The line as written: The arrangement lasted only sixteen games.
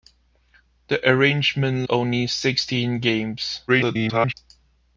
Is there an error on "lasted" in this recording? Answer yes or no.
yes